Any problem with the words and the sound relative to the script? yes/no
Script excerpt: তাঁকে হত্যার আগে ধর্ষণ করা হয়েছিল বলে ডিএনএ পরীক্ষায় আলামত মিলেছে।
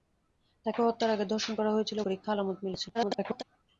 yes